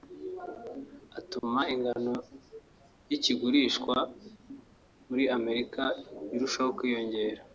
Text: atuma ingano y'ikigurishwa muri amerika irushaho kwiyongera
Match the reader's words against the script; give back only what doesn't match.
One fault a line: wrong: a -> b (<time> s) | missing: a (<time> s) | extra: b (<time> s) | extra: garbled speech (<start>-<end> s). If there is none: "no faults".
no faults